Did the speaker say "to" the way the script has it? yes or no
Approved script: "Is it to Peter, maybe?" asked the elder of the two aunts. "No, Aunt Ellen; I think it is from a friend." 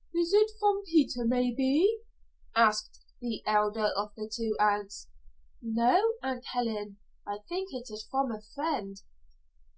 no